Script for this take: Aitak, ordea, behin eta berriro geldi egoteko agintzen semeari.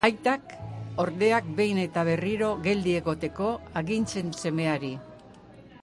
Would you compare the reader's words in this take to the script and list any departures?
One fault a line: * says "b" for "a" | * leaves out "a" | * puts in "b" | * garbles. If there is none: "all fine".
all fine